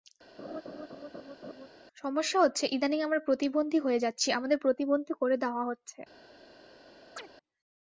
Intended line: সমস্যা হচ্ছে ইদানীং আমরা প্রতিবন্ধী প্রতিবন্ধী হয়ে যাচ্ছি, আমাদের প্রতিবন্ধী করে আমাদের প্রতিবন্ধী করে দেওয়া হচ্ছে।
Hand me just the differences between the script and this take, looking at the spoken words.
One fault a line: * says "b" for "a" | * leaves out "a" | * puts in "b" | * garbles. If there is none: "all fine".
* leaves out "প্রতিবন্ধী"
* leaves out "আমাদের প্রতিবন্ধী করে"